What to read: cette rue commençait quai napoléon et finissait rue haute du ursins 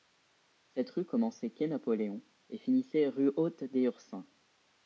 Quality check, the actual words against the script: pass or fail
fail